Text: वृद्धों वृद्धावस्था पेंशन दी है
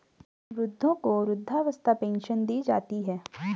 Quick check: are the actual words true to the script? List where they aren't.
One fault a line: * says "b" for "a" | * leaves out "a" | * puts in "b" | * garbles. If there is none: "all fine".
* puts in "को"
* puts in "जाती"